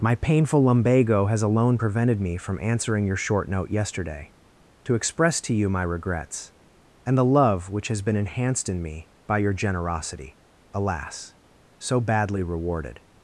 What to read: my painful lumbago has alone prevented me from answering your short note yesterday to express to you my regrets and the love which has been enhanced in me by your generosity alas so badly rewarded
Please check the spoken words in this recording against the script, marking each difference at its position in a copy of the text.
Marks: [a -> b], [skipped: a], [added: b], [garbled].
my painful lumbago has alone prevented me from answering your short note yesterday to express to you my regrets and the love which has been enhanced in me by your generosity alas so badly rewarded